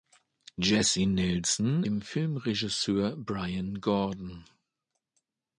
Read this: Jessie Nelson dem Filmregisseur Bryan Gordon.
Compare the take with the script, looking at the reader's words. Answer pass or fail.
pass